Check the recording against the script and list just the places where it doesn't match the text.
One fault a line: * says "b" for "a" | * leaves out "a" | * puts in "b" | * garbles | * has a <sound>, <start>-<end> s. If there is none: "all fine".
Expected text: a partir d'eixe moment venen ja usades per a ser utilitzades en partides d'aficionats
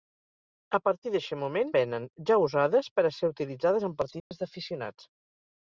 * has a dropout, 4.2-4.3 s